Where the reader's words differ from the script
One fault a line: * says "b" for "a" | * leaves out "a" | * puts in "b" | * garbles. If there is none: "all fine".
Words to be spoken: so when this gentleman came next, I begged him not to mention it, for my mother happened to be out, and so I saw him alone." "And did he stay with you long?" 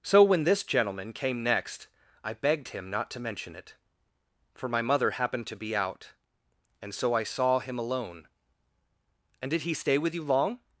all fine